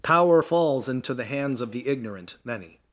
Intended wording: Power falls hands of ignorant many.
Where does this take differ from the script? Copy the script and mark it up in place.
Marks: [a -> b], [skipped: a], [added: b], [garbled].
Power falls [added: into the] hands of [added: the] ignorant many.